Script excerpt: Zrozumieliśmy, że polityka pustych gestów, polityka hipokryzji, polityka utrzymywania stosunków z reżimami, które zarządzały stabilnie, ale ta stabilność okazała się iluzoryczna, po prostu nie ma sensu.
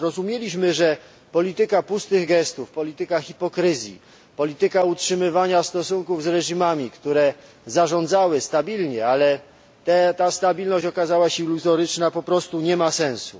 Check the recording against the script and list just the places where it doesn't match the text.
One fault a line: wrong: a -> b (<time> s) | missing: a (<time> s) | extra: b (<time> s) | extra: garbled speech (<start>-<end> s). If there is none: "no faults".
no faults